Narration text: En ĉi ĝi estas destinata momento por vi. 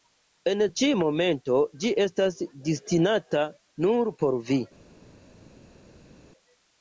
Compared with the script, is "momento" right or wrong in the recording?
wrong